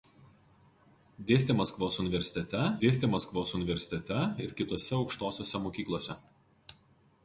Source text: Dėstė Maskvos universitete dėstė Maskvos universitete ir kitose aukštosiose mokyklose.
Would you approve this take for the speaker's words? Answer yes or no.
yes